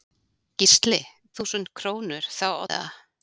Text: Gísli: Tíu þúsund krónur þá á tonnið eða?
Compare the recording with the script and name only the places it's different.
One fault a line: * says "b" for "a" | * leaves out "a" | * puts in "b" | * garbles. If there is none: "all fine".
* leaves out "Tíu"
* leaves out "tonnið"